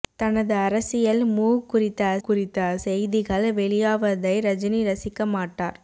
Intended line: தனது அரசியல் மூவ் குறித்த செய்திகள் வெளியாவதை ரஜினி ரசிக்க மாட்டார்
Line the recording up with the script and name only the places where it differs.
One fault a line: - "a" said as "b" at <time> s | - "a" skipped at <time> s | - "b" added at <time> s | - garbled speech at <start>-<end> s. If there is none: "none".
- "குறித்த" added at 2.2 s